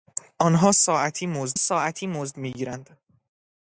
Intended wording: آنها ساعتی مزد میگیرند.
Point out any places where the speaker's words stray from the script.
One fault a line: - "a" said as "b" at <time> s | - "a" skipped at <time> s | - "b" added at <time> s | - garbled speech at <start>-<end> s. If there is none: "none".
- "ساعتی مزد" added at 1.5 s